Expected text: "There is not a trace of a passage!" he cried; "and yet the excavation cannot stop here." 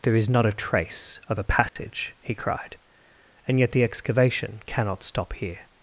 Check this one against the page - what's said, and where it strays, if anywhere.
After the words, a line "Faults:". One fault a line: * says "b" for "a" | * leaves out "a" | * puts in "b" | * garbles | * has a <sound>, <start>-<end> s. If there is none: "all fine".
"There is not a trace of a passage!" he cried; "and yet the excavation cannot stop here."
Faults:
* has a dropout, 1.7-1.8 s